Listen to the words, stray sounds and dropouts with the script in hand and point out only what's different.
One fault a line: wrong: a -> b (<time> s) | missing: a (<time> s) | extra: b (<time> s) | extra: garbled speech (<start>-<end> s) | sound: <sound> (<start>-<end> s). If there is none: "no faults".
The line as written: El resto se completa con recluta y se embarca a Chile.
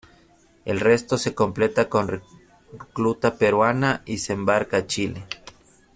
extra: peruana (3.3 s)